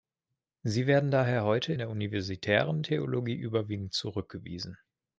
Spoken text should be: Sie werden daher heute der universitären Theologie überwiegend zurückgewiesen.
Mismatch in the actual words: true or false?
false